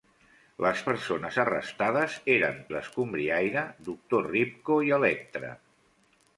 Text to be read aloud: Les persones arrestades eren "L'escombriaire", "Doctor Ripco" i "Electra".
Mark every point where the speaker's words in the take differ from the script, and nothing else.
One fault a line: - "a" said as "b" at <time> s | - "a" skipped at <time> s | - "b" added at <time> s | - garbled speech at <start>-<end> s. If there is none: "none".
none